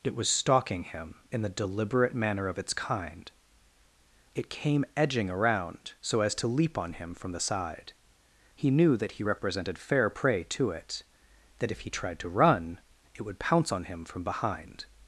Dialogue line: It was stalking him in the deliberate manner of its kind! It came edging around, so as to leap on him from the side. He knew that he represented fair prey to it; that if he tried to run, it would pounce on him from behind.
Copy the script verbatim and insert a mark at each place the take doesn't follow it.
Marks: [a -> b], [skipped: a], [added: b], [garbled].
It was stalking him in the deliberate manner of its kind! It came edging around, so as to leap on him from the side. He knew that he represented fair prey to it; that if he tried to run, it would pounce on him from behind.